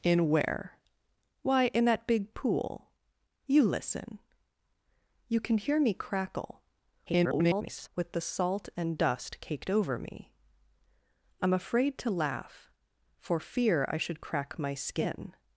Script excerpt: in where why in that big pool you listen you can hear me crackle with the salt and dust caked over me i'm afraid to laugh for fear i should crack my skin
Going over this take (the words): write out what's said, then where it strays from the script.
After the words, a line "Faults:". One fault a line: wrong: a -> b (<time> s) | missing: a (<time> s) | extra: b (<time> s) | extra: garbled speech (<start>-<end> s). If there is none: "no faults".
in where why in that big pool you listen you can hear me crackle [garbled] with the salt and dust caked over me i'm afraid to laugh for fear i should crack my skin
Faults:
extra: garbled speech (7.1-7.9 s)